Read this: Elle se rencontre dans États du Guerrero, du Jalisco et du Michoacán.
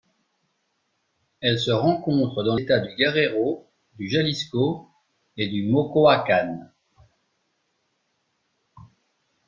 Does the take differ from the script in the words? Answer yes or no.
no